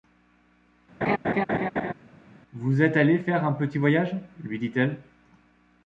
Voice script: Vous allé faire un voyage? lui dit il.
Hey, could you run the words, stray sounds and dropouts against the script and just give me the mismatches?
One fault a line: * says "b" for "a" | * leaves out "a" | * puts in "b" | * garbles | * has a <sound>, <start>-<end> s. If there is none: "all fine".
* has a laugh, 1.0-1.9 s
* puts in "êtes"
* puts in "petit"
* says "elle" for "il"